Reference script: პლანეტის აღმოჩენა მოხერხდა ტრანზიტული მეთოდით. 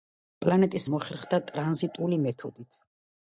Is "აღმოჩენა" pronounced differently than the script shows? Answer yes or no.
yes